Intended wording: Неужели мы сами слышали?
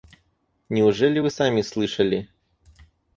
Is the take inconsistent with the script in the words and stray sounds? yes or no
yes